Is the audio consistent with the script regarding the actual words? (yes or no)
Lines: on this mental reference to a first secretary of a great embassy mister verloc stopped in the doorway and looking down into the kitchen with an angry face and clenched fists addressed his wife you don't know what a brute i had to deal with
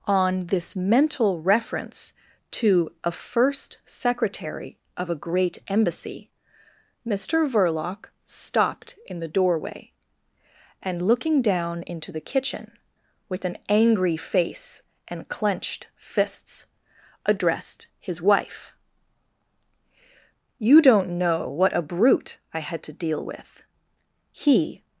no